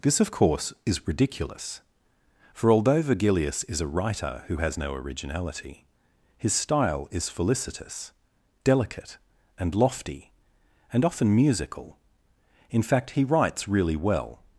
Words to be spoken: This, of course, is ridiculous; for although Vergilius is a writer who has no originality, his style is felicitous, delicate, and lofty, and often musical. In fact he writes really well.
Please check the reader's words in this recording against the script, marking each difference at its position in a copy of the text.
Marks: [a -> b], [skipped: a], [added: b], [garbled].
This, of course, is ridiculous; for although Vergilius is a writer who has no originality, his style is felicitous, delicate, and lofty, and often musical. In fact he writes really well.